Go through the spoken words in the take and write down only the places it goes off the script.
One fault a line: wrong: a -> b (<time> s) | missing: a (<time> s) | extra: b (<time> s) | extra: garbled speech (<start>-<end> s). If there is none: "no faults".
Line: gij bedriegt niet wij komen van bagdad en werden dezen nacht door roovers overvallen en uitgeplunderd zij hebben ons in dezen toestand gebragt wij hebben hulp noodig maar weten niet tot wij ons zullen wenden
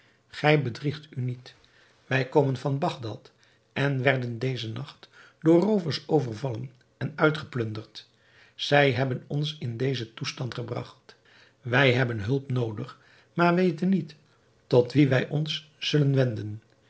extra: u (1.1 s)
extra: wien (14.9 s)